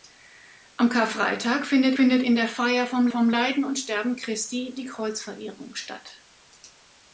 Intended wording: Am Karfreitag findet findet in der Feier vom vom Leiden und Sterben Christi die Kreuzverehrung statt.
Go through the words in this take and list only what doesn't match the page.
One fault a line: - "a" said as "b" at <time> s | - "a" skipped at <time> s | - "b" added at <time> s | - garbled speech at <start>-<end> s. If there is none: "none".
none